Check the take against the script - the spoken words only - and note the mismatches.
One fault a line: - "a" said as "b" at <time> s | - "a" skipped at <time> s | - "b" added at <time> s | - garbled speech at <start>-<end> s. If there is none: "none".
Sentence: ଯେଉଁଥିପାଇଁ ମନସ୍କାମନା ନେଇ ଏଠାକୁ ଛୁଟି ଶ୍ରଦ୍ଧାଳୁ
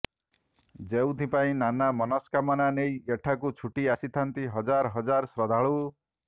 - "ନାନା" added at 1.6 s
- "ଆସିଥାନ୍ତି ହଜାର ହଜାର" added at 4.0 s